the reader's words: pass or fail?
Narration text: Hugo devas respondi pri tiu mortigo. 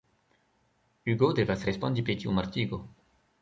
pass